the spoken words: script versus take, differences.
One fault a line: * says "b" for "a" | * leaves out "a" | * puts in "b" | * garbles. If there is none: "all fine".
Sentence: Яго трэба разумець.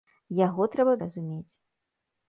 all fine